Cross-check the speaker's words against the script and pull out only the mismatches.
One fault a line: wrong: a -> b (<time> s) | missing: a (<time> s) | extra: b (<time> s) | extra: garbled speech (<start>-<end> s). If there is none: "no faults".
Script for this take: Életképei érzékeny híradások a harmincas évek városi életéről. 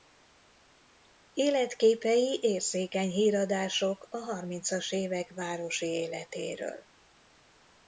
no faults